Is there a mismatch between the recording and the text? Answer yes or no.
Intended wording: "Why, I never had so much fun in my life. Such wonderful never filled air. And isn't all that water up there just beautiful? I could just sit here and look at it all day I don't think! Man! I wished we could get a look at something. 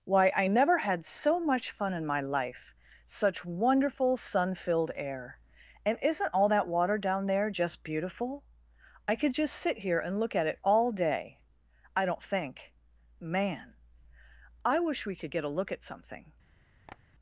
yes